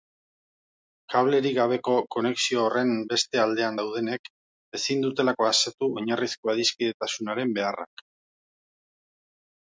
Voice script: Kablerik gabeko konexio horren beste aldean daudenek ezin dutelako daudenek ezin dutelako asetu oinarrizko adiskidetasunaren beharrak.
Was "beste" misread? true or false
false